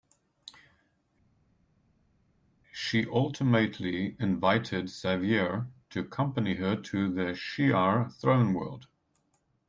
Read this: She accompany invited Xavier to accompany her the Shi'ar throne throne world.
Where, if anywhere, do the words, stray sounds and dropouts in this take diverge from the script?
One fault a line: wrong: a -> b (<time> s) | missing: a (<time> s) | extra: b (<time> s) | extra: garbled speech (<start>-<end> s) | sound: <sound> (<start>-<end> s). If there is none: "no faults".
wrong: accompany -> ultimately (3.1 s)
extra: to (6.7 s)
missing: throne (8.5 s)